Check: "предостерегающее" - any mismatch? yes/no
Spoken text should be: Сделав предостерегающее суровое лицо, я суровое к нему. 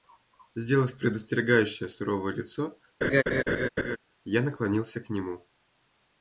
no